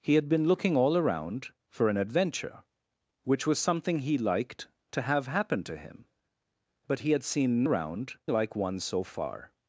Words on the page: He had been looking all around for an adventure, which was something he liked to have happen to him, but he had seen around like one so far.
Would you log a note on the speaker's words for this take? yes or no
no